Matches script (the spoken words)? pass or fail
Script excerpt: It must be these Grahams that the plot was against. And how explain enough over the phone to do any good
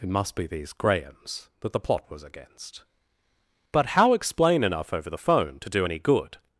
fail